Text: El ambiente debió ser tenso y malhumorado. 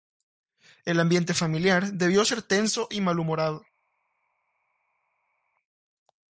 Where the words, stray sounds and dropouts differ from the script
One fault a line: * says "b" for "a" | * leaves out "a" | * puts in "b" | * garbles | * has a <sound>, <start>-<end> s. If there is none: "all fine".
* puts in "familiar"